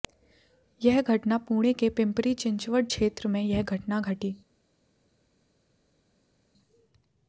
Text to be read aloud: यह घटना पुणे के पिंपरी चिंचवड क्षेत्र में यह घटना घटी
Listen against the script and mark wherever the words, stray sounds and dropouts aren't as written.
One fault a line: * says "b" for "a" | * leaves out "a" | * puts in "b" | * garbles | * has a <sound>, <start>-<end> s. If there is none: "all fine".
all fine